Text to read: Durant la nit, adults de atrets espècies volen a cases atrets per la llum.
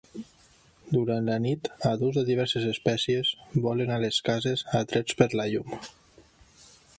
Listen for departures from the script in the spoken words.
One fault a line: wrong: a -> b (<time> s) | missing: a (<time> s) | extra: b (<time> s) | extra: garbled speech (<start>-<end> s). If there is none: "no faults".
wrong: atrets -> diverses (2.3 s)
extra: les (4.0 s)